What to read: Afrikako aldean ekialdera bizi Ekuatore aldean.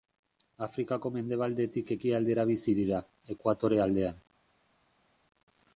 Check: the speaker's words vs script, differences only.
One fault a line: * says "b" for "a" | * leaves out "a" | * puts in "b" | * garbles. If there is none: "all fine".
* says "mendebaldetik" for "aldean"
* puts in "dira"